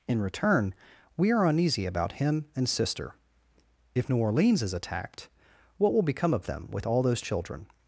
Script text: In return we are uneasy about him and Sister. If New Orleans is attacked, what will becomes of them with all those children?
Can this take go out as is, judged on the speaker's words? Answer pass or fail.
fail